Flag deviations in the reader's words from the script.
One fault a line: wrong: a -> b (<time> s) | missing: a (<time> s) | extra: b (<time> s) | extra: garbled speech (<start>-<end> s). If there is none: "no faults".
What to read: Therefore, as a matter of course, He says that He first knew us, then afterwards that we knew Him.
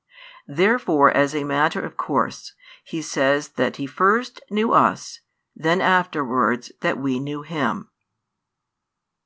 no faults